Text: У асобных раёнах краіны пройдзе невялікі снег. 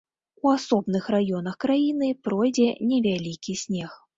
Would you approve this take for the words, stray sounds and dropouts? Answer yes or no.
yes